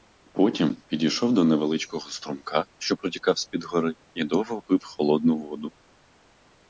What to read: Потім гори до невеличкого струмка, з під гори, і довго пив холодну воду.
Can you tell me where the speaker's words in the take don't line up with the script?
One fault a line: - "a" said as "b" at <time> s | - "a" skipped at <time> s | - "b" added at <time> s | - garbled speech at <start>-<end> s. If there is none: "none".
- "гори" said as "підійшов" at 0.8 s
- "що протікав" added at 2.8 s